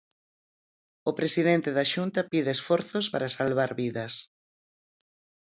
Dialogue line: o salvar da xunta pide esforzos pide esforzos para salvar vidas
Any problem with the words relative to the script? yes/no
yes